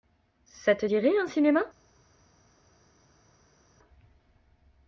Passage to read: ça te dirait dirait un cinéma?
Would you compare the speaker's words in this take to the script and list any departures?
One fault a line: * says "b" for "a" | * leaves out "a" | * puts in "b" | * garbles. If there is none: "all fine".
* leaves out "dirait"